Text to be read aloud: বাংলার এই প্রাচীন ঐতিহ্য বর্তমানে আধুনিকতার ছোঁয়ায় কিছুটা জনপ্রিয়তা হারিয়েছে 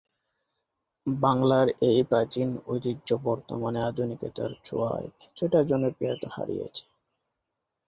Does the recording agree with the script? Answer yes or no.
yes